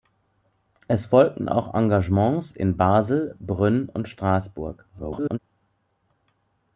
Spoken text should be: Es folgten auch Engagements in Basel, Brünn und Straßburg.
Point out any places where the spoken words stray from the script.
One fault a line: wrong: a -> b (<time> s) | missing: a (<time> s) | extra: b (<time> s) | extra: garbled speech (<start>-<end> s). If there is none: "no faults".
extra: garbled speech (4.9-5.4 s)